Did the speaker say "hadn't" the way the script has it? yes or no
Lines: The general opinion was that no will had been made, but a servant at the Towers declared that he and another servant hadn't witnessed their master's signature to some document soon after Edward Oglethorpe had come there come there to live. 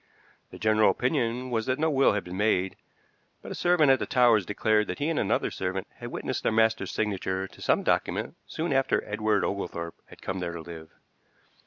no